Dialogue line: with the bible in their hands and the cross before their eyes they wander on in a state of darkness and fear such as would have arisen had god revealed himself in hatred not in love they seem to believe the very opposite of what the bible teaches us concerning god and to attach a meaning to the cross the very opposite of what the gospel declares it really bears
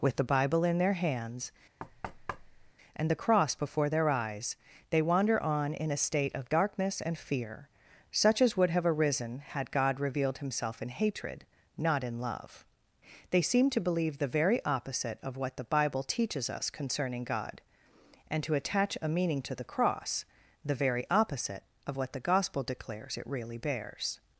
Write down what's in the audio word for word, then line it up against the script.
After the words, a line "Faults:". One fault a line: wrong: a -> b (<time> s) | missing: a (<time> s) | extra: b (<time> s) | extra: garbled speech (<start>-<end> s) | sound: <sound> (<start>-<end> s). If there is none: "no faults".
with the bible in their hands and the cross before their eyes they wander on in a state of darkness and fear such as would have arisen had god revealed himself in hatred not in love they seem to believe the very opposite of what the bible teaches us concerning god and to attach a meaning to the cross the very opposite of what the gospel declares it really bears
Faults:
sound: thud (1.8-2.7 s)